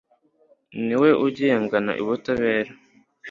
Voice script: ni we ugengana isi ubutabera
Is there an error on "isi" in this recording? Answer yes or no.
yes